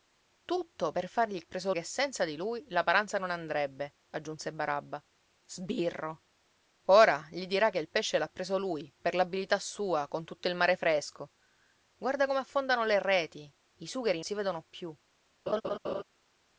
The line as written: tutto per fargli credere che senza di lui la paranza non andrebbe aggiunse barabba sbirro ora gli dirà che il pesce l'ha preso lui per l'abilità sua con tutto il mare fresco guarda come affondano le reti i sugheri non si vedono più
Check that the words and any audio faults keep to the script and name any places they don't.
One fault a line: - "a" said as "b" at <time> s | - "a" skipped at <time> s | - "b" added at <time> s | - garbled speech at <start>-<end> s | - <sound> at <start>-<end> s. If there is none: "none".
- "credere" said as "preso" at 1.4 s
- "non" skipped at 14.2 s
- laugh at 15.5-16.0 s